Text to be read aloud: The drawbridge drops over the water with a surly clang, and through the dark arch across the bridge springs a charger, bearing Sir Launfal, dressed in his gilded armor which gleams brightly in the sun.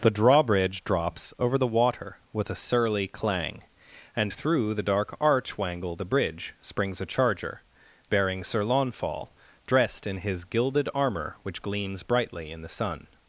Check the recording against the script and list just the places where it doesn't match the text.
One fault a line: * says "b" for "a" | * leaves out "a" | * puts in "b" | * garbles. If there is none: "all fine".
* says "wangle" for "across"